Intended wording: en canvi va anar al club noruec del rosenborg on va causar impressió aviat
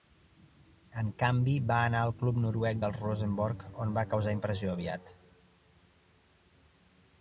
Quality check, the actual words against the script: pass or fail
pass